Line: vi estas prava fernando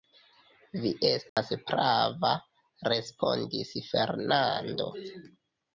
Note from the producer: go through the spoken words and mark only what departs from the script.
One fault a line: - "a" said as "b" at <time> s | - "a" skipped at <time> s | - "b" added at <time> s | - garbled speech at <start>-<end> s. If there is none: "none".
- "respondis" added at 2.9 s